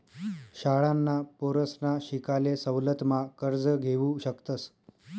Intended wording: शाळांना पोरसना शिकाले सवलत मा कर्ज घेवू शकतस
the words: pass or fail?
pass